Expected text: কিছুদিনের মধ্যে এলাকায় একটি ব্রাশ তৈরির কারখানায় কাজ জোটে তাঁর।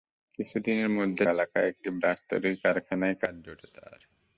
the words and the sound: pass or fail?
pass